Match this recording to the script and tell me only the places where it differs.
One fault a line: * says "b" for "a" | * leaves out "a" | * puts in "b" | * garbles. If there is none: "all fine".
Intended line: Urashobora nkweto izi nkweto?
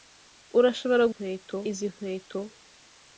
all fine